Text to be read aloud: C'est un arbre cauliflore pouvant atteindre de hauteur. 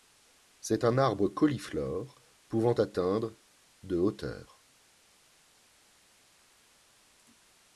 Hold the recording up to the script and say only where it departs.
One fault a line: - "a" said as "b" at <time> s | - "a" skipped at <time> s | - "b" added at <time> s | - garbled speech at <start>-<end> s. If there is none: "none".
none